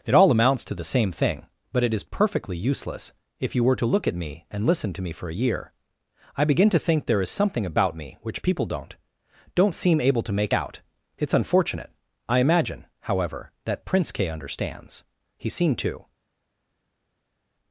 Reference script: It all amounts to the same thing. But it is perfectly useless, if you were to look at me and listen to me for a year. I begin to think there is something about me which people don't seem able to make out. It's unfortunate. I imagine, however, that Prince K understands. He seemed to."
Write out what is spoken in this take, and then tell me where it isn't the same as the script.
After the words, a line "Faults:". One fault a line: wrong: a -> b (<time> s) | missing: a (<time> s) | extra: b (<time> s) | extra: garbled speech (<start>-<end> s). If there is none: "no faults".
It all amounts to the same thing. But it is perfectly useless, if you were to look at me and listen to me for a year. I begin to think there is something about me which people don't don't seem able to make out. It's unfortunate. I imagine, however, that Prince K understands. He seemed to."
Faults:
extra: don't (9.5 s)